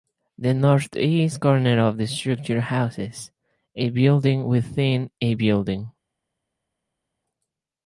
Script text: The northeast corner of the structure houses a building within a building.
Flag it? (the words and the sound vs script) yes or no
no